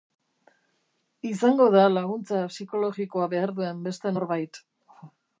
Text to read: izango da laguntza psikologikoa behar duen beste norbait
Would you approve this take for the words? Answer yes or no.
yes